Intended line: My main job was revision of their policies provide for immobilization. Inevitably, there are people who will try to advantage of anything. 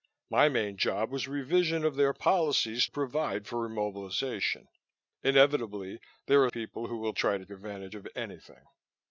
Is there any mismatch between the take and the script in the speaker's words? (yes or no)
no